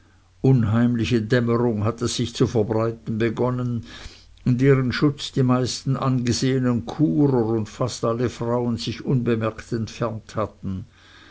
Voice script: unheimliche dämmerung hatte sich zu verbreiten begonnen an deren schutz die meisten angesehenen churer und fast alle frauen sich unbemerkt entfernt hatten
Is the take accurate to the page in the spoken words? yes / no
no